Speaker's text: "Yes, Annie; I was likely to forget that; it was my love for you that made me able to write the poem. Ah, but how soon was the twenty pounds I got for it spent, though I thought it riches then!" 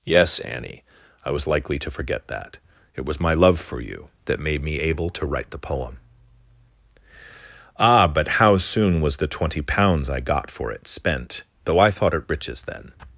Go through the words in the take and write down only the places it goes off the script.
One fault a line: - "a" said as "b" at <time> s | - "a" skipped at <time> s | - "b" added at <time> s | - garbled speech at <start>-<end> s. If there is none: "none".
none